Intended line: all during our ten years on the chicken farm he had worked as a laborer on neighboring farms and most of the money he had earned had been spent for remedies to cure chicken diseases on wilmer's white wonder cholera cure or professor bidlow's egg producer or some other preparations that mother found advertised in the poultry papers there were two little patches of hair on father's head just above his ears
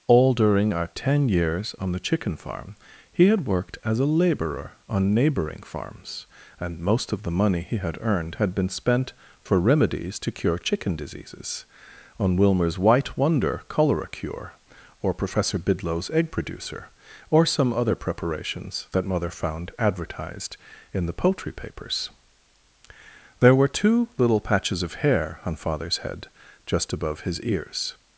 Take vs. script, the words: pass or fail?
pass